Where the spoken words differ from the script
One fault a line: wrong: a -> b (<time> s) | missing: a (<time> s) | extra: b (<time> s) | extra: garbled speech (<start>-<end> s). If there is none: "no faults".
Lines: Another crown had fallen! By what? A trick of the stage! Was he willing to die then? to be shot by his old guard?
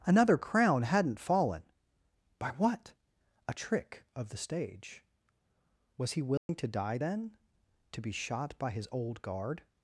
wrong: had -> hadn't (0.8 s)